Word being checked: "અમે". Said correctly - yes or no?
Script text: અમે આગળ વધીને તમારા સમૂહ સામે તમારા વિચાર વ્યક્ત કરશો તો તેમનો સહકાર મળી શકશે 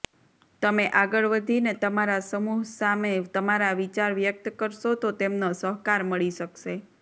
no